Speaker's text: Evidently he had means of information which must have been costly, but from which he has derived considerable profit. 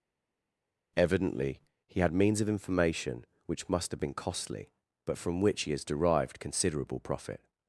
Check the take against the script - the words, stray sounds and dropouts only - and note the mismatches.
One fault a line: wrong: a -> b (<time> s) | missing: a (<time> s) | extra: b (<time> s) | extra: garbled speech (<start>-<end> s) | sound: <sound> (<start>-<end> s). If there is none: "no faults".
no faults